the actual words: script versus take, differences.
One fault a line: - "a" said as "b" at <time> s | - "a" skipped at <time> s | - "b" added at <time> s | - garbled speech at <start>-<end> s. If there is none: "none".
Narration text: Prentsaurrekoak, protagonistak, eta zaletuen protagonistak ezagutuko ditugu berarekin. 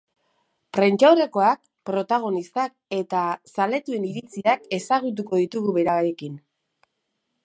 - "protagonistak" said as "iritziak" at 4.1 s